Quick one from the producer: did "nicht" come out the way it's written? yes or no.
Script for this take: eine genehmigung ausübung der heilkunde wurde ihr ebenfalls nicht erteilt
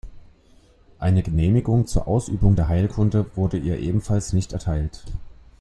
yes